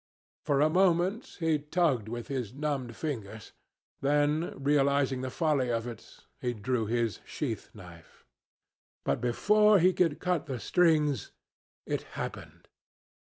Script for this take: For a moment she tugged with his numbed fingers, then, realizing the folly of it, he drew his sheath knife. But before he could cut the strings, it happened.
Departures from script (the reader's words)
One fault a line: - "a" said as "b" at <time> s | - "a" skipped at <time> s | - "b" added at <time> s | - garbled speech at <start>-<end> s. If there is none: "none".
- "she" said as "he" at 1.4 s